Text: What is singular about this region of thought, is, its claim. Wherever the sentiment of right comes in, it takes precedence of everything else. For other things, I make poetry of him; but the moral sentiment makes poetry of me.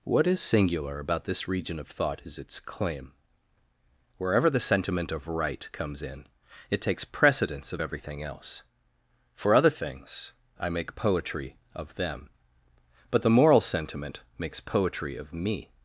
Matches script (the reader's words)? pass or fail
fail